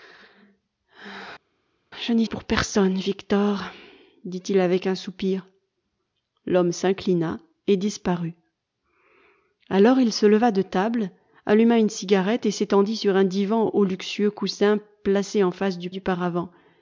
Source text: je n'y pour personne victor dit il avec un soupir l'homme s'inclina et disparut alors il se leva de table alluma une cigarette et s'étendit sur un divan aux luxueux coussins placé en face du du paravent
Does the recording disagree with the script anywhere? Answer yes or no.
no